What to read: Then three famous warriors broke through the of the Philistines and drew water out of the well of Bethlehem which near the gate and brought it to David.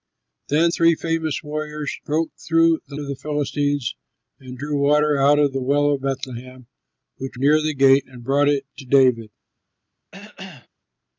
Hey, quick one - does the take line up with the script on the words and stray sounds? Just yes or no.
no